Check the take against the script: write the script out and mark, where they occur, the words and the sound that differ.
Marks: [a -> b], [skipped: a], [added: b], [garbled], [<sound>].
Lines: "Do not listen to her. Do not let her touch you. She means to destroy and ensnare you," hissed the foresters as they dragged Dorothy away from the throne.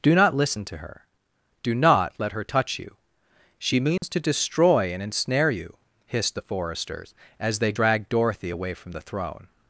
"Do not listen to her. Do not let her touch you. She means [dropout] to destroy and ensnare you," hissed the foresters as they dragged Dorothy away from the throne.